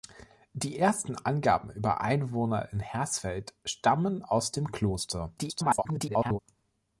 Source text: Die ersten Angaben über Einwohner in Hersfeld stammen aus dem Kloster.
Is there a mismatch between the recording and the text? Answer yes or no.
yes